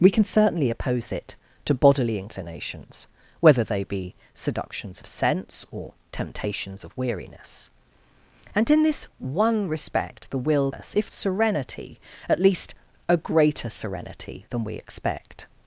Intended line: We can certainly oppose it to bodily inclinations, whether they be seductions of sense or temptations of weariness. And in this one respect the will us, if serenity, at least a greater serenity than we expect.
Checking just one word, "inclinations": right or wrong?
right